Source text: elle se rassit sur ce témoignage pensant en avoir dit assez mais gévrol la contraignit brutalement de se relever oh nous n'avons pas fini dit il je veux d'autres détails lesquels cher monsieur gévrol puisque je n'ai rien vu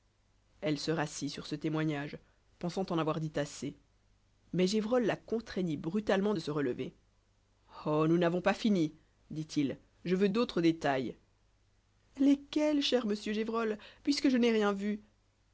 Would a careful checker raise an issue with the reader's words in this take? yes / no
no